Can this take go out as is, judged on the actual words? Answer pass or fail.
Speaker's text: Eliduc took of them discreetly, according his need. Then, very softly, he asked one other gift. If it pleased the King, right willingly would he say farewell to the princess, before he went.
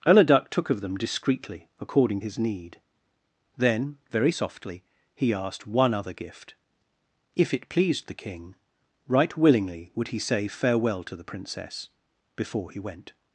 pass